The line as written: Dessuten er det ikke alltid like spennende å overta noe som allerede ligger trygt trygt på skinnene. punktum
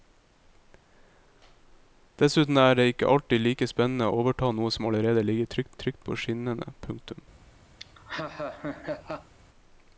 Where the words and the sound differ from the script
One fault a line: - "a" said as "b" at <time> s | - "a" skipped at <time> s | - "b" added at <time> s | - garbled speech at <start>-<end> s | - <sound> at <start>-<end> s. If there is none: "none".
- laugh at 7.8-9.3 s